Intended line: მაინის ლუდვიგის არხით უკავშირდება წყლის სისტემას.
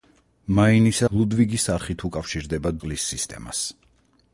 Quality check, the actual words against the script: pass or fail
pass